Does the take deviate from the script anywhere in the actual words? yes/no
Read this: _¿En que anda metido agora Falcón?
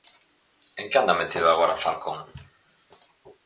no